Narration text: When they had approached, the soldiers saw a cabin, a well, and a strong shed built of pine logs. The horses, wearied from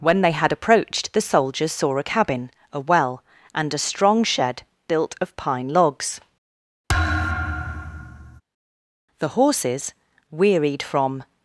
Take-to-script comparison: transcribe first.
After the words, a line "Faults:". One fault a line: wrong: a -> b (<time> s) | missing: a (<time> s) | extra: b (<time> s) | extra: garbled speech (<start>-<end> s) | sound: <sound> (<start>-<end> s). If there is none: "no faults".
When they had approached, the soldiers saw a cabin, a well, and a strong shed built of pine logs. The horses, wearied from
Faults:
sound: thud (6.9-8.4 s)